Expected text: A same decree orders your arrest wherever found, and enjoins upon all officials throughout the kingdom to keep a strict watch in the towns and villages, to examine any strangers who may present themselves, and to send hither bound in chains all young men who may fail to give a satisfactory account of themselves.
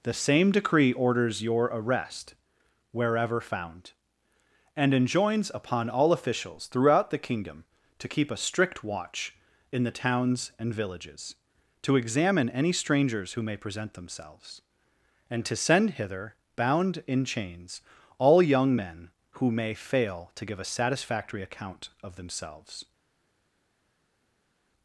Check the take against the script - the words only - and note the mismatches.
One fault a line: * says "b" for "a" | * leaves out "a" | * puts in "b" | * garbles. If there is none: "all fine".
* says "The" for "A"